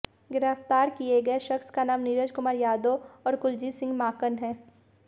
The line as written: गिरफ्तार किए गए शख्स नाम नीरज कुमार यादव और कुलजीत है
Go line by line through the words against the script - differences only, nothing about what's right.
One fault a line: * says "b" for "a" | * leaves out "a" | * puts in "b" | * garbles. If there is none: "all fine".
* puts in "का"
* puts in "सिंह माकन"